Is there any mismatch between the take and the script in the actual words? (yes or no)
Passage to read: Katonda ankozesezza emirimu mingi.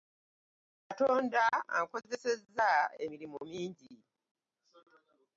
no